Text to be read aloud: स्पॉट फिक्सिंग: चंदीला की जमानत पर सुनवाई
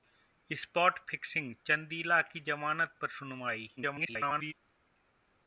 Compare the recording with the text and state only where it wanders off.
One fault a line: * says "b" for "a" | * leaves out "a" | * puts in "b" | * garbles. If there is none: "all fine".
* garbles